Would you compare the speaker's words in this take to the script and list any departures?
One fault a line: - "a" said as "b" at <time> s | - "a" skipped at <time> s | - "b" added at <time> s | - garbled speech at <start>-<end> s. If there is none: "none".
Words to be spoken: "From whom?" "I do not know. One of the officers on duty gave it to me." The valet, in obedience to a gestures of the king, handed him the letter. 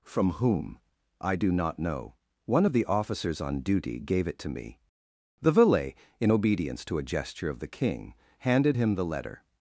- "gestures" said as "gesture" at 7.0 s